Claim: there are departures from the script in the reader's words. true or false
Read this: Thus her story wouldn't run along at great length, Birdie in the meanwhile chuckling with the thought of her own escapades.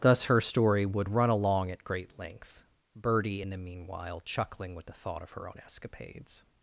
true